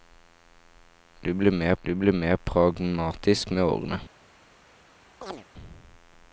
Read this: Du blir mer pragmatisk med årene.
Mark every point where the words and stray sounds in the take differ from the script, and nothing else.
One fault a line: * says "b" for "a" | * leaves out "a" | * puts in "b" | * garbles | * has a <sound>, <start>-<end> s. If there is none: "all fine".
* puts in "du blir mer"
* has a chirp, 5.2-5.5 s